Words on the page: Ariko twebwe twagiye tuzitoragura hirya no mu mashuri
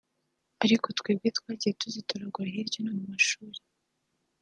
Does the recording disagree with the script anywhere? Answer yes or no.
no